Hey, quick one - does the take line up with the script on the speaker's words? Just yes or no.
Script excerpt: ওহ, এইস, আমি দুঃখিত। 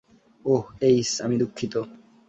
yes